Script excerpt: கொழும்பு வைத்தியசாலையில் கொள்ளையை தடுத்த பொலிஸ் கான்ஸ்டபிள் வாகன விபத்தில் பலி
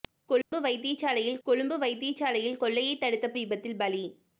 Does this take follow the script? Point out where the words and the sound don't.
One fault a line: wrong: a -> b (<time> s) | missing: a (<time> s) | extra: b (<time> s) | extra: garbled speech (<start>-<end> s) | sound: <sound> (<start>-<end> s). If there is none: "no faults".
sound: dropout (0.4-0.5 s)
extra: கொழும்பு வைத்தியசாலையில் (1.4 s)
missing: பொலிஸ் கான்ஸ்டபிள் வாகன (3.3 s)